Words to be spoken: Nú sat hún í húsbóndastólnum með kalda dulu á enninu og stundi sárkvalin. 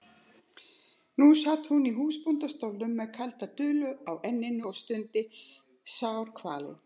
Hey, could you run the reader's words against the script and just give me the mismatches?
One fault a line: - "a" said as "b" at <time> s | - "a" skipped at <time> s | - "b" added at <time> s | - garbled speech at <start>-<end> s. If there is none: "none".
none